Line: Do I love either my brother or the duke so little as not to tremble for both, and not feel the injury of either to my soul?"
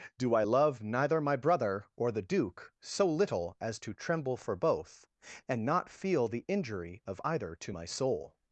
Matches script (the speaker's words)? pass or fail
fail